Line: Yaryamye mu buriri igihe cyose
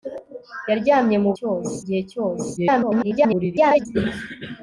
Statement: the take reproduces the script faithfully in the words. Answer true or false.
false